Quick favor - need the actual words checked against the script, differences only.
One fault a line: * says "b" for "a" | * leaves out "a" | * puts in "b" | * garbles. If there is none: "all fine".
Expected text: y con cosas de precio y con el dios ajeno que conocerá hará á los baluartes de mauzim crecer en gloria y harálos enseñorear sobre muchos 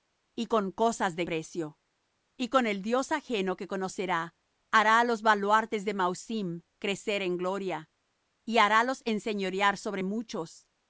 all fine